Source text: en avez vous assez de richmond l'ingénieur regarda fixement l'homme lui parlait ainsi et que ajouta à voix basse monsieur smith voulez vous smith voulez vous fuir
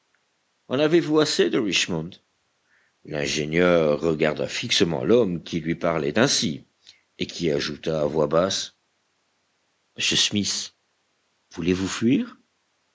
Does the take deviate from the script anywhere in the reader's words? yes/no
yes